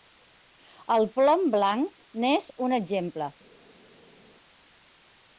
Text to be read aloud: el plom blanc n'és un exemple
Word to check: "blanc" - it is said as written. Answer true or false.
true